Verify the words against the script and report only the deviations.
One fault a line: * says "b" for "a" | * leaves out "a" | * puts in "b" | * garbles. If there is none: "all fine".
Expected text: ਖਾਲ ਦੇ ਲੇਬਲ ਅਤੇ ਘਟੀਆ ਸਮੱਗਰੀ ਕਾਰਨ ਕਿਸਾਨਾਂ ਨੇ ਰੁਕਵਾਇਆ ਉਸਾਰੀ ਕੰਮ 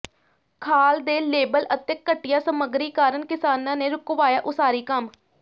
all fine